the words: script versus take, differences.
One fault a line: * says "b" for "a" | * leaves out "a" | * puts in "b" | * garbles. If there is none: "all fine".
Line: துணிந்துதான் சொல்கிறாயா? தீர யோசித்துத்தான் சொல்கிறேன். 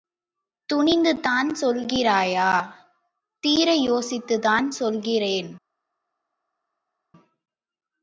all fine